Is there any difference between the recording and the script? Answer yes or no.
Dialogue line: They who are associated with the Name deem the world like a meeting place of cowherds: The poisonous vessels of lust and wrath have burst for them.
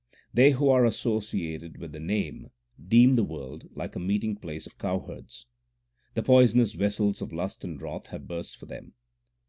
no